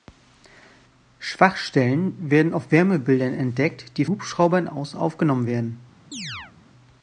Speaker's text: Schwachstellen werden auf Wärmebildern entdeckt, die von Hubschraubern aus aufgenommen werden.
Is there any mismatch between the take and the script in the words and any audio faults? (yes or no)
yes